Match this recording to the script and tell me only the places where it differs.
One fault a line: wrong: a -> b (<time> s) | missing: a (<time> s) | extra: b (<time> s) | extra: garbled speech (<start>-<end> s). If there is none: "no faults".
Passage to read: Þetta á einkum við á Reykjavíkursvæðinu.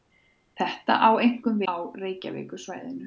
missing: við (1.6 s)